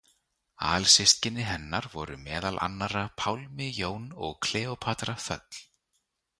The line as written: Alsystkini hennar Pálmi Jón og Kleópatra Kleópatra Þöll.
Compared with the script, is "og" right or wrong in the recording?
right